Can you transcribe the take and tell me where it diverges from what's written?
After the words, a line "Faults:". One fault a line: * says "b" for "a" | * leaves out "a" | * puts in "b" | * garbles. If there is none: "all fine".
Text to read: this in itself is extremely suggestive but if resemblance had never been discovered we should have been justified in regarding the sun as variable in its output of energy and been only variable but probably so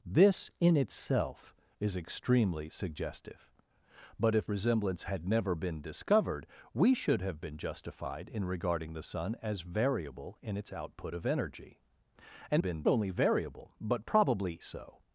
this in itself is extremely suggestive but if resemblance had never been discovered we should have been justified in regarding the sun as variable in its output of energy and been only variable but probably so
Faults:
all fine